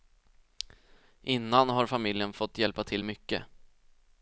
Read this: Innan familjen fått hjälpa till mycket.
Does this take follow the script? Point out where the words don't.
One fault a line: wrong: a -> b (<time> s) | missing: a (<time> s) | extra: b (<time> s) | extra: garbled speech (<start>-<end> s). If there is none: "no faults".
extra: har (1.7 s)